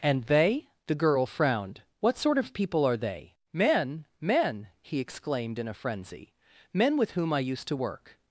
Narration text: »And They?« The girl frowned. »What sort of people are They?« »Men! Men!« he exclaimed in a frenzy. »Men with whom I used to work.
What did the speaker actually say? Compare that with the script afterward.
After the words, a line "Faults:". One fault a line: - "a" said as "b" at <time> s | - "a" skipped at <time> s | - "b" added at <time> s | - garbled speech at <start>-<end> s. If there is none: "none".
»And They?« The girl frowned. »What sort of people are They?« »Men! Men!« he exclaimed in a frenzy. »Men with whom I used to work.
Faults:
none